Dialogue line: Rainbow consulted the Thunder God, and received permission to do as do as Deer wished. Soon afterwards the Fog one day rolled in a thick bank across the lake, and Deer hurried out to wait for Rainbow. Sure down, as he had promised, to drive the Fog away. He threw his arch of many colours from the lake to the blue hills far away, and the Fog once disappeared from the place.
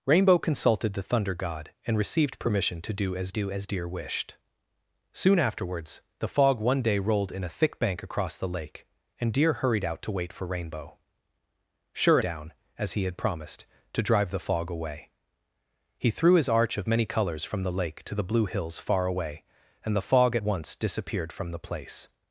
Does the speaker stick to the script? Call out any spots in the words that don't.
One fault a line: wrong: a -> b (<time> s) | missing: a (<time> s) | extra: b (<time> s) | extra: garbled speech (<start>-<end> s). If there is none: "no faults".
no faults